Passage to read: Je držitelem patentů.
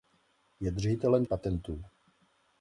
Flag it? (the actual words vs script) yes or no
no